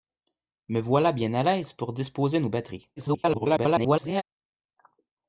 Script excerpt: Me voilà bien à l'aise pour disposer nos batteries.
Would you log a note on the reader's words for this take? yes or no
yes